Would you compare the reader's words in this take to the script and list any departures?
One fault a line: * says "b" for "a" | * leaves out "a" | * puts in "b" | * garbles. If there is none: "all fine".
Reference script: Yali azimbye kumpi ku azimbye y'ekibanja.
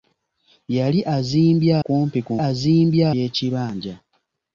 all fine